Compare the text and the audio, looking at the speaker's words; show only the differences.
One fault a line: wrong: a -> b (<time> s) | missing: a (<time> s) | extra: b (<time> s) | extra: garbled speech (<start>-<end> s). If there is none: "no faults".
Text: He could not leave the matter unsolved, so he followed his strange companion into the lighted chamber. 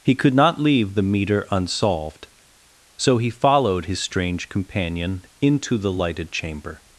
wrong: matter -> meter (1.0 s)